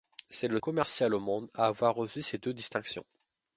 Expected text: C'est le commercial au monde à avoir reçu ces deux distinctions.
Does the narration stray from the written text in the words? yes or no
no